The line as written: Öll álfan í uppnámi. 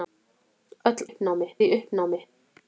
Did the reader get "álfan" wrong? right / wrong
wrong